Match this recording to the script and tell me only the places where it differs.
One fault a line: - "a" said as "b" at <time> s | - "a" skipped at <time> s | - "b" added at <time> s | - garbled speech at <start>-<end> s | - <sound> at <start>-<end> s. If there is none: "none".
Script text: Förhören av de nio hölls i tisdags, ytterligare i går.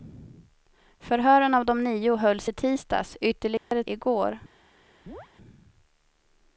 - dropout at 3.6-3.7 s
- chirp at 5.1-5.3 s